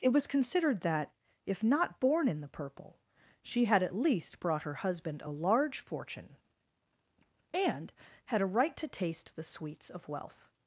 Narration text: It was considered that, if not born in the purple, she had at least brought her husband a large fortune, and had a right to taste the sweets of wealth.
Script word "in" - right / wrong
right